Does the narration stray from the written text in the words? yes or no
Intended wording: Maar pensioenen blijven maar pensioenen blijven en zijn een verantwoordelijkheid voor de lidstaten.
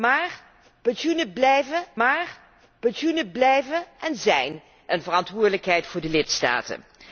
no